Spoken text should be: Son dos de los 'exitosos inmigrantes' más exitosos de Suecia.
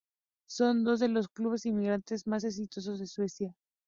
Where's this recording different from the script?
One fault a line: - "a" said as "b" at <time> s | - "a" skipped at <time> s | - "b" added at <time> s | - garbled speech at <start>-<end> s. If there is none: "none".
- "exitosos" said as "clubes" at 1.3 s